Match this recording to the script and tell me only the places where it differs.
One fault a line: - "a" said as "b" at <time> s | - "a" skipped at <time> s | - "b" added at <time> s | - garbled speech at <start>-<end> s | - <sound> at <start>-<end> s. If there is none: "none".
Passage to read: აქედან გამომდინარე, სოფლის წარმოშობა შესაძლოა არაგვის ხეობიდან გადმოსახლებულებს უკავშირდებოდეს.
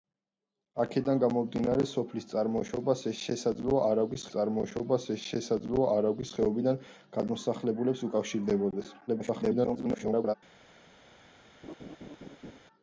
- "წარმოშობა შესაძლოა არაგვის" added at 4.3 s
- garbled speech at 9.1-10.3 s
- laugh at 11.6-12.6 s